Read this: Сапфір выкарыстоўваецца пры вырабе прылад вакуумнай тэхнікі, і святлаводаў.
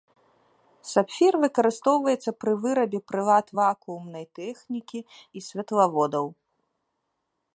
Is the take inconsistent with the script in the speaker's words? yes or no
no